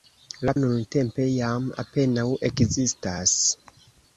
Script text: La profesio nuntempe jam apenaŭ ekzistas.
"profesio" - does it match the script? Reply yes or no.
no